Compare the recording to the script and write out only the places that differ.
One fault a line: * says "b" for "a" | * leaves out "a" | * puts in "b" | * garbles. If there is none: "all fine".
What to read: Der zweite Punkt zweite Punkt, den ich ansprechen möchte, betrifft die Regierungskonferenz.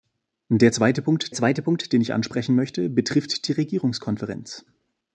all fine